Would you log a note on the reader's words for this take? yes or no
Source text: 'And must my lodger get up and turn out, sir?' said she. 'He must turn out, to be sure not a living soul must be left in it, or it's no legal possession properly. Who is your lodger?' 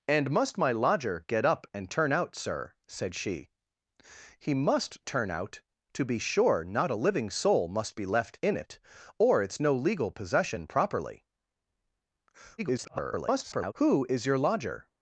yes